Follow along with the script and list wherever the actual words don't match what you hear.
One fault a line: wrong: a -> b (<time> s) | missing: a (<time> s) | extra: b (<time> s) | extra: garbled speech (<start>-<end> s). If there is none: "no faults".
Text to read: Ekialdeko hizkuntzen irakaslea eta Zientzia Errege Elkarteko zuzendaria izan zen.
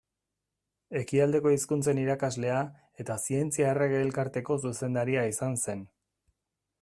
no faults